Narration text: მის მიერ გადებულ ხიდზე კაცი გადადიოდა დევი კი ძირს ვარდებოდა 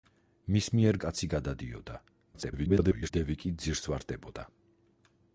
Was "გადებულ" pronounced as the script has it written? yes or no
no